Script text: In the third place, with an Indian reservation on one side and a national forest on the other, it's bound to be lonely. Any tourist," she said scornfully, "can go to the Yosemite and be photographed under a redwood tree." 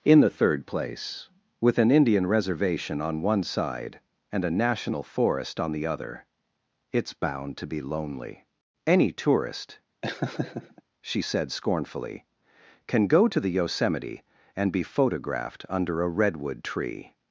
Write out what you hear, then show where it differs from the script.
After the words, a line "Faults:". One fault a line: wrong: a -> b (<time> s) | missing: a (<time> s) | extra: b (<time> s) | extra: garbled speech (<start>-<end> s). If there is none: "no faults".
In the third place, with an Indian reservation on one side and a national forest on the other, it's bound to be lonely. Any tourist," she said scornfully, "can go to the Yosemite and be photographed under a redwood tree."
Faults:
no faults